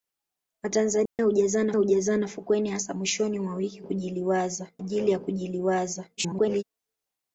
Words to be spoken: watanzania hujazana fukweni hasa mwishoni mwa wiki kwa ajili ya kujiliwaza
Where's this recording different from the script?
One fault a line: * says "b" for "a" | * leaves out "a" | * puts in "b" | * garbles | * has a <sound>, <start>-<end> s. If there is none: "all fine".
* has a dropout, 1.1-1.2 s
* puts in "hujazana"
* says "kujiliwaza" for "kwa"
* garbles